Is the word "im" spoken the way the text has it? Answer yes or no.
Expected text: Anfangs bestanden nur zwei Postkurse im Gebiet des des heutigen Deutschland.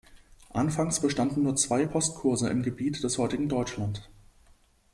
yes